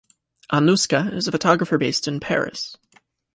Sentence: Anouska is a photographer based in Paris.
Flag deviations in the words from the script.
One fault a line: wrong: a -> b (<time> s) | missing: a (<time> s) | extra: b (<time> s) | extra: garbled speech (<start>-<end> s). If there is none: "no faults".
no faults